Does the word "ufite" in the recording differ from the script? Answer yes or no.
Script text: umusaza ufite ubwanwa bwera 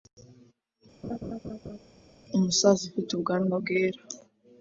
no